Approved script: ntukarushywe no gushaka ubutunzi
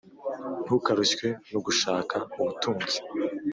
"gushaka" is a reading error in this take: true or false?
false